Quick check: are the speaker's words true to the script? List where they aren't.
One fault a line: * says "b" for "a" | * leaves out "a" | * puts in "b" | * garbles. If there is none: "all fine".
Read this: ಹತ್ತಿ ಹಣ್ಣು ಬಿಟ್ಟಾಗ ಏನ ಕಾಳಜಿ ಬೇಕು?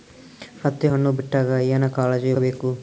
all fine